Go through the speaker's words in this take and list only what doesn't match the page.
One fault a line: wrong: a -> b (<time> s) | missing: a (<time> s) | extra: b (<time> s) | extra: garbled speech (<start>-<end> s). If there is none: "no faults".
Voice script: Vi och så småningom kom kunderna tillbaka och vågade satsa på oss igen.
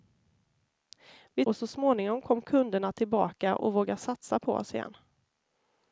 no faults